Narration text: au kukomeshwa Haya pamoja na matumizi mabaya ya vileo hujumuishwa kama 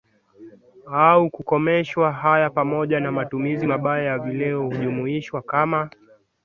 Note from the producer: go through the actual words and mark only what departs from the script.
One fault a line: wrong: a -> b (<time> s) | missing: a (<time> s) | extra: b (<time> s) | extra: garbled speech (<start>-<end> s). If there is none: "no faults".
no faults